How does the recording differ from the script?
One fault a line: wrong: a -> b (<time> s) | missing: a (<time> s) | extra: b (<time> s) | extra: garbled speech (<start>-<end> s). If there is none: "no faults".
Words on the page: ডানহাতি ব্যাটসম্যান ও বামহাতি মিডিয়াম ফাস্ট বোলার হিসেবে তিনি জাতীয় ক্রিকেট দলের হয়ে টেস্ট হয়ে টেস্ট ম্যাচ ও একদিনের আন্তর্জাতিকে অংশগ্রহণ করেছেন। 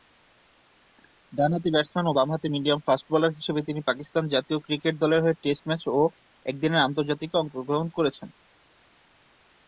extra: পাকিস্তান (3.9 s)
missing: হয়ে টেস্ট (5.6 s)